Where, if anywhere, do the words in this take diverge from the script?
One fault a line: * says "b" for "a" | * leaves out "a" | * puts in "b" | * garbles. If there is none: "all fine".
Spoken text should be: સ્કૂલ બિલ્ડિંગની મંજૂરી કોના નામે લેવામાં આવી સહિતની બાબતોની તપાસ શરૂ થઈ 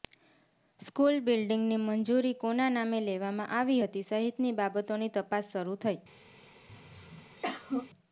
* puts in "હતી"